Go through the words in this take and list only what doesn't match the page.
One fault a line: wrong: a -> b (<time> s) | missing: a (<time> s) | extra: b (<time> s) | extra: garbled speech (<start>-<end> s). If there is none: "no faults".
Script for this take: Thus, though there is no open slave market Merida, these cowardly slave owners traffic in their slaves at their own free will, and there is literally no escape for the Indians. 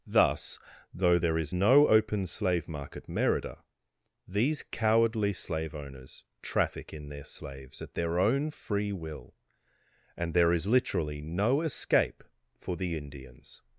no faults